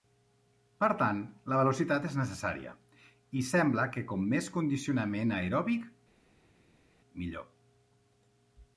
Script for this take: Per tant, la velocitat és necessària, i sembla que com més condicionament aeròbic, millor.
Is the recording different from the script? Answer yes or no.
no